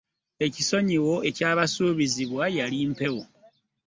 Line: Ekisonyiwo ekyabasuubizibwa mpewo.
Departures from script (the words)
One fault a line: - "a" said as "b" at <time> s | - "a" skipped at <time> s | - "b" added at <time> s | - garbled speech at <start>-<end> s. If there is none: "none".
- "yali" added at 2.6 s